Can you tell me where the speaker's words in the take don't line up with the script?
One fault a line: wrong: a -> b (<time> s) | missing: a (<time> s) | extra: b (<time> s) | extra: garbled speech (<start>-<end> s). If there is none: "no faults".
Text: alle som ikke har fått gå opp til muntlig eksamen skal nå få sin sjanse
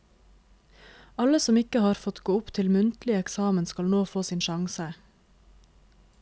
no faults